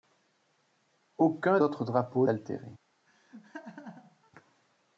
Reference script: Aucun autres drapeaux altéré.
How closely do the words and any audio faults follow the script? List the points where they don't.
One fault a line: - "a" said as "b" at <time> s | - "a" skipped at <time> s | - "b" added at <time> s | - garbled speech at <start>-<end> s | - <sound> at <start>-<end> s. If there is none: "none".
- laugh at 3.1-4.3 s